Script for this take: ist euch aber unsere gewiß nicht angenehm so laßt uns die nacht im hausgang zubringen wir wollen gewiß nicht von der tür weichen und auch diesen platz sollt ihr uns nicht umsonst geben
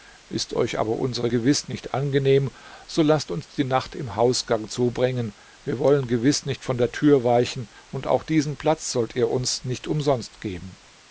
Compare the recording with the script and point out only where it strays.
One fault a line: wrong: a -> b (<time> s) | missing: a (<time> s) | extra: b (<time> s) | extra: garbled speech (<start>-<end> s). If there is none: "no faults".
no faults